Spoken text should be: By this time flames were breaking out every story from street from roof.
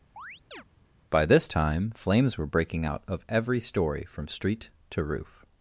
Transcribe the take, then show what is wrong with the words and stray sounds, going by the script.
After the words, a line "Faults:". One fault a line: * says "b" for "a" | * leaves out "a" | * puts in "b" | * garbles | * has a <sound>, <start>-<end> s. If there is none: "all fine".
By this time flames were breaking out of every story from street to roof.
Faults:
* has a chirp, 0.2-0.6 s
* puts in "of"
* says "to" for "from"